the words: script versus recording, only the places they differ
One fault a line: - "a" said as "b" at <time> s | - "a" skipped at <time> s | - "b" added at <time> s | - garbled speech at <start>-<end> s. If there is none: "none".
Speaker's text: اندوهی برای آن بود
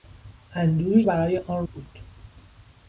none